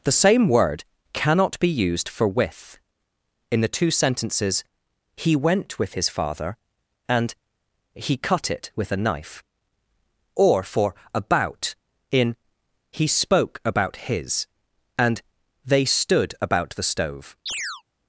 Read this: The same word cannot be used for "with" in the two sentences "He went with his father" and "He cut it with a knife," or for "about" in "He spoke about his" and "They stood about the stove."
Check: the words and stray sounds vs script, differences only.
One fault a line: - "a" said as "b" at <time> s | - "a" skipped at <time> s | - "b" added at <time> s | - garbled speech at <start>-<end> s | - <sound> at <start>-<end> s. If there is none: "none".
- chirp at 17.5-17.8 s